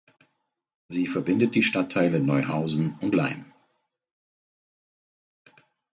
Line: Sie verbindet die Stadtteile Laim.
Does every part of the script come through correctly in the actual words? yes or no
no